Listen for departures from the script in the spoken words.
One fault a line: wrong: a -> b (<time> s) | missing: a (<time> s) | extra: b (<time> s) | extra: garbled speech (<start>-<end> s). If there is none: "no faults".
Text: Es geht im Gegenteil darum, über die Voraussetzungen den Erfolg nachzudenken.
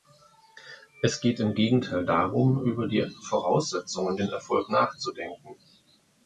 no faults